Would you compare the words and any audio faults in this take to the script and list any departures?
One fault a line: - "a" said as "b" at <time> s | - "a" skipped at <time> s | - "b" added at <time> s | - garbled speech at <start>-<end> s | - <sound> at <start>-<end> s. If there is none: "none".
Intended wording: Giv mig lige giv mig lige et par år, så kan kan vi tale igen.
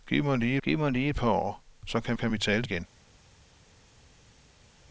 none